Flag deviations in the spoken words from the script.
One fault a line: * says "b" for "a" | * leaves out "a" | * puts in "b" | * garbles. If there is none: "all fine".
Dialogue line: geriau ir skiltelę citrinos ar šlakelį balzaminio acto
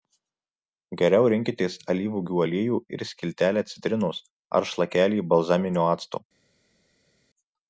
* puts in "rinkitės alyvuogių aliejų"